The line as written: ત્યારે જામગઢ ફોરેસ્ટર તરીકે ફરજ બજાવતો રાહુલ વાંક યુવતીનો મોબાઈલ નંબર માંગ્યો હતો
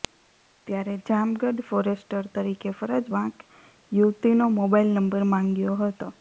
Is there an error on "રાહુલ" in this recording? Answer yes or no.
yes